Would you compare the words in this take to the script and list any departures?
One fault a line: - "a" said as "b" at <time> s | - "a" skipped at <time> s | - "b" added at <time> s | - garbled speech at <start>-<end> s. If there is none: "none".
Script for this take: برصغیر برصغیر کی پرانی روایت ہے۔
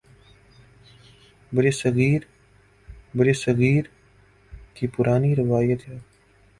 none